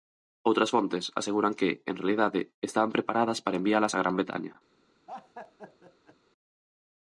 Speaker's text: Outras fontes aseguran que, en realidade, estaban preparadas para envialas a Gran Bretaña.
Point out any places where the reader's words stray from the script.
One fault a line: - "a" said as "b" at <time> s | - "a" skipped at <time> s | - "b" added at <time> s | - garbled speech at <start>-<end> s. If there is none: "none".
none